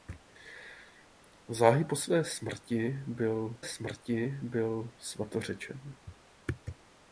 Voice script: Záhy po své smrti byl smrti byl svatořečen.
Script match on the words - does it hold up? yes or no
yes